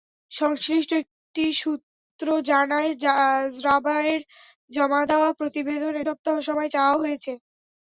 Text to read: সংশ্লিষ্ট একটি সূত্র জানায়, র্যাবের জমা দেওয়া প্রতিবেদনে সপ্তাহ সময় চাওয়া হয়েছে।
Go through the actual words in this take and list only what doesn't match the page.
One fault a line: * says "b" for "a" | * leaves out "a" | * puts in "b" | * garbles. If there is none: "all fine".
all fine